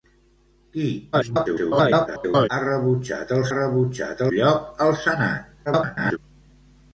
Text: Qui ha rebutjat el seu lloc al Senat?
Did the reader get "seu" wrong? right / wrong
wrong